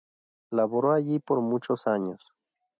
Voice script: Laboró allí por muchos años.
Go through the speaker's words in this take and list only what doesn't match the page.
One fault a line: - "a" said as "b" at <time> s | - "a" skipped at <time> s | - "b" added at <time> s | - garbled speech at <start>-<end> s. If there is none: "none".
none